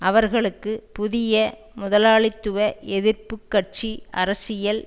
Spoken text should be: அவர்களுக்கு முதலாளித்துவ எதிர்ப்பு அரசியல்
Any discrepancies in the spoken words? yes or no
yes